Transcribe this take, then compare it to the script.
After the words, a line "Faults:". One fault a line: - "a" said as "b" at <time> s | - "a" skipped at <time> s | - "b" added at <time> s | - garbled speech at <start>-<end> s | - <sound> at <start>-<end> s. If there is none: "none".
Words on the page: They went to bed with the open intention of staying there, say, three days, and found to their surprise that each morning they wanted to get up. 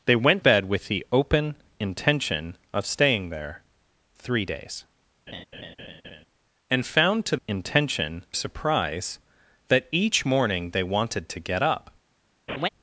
They went bed with the open intention of staying there, three days, and found to intention surprise that each morning they wanted to get up.
Faults:
- "to" skipped at 0.4 s
- "say" skipped at 3.6 s
- laugh at 5.3-6.3 s
- "their" said as "intention" at 7.5 s
- laugh at 12.5-12.7 s